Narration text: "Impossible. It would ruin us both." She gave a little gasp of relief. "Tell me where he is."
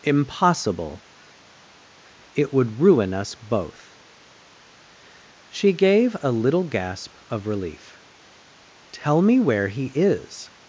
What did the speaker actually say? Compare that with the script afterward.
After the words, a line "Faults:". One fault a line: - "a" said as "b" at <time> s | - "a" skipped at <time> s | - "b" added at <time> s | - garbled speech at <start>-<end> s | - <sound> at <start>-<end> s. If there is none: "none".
"Impossible. It would ruin us both." She gave a little gasp of relief. "Tell me where he is."
Faults:
none